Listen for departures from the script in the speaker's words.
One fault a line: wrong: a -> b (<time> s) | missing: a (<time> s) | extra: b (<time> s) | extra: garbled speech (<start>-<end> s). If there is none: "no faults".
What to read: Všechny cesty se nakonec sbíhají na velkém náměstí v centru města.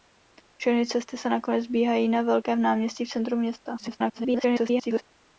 extra: garbled speech (3.8-5.0 s)